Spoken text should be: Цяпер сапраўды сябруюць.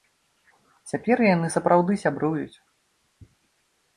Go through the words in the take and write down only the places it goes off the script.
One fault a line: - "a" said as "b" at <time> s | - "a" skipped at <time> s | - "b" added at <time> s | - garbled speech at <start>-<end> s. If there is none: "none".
- "яны" added at 1.4 s